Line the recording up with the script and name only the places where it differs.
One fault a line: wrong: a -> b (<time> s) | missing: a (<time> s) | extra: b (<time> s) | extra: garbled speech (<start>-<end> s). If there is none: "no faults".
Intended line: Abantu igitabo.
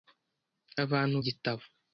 no faults